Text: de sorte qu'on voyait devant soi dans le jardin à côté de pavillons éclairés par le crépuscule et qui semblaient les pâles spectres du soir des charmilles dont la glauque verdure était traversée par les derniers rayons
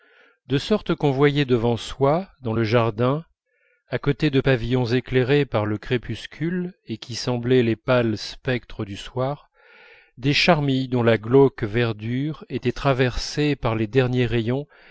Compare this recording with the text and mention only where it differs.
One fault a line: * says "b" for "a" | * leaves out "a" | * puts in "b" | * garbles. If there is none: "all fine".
all fine